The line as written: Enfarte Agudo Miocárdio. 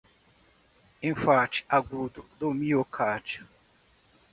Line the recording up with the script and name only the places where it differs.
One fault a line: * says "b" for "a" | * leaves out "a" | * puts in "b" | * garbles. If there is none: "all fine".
* puts in "do"